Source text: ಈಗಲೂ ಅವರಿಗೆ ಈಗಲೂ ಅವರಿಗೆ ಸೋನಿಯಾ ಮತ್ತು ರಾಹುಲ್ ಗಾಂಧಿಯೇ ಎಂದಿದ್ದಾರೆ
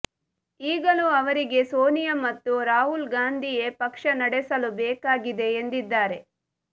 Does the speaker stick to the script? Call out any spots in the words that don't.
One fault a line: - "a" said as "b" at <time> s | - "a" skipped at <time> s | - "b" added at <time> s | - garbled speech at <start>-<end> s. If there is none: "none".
- "ಈಗಲೂ ಅವರಿಗೆ" skipped at 1.6 s
- "ಪಕ್ಷ ನಡೆಸಲು ಬೇಕಾಗಿದೆ" added at 3.8 s